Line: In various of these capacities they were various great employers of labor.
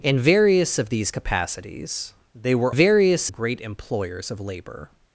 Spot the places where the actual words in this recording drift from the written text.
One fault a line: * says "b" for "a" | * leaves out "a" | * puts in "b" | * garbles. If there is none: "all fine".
all fine